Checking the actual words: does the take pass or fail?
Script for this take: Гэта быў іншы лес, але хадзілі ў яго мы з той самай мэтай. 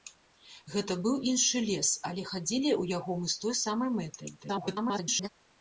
fail